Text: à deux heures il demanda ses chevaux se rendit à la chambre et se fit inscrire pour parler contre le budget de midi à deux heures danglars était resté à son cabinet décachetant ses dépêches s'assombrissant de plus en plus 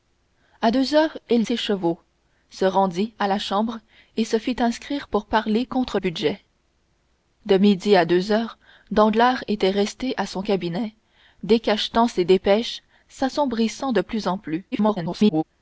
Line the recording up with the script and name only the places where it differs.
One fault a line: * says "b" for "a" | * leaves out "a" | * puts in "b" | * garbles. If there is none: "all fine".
* leaves out "demanda"
* leaves out "le"
* garbles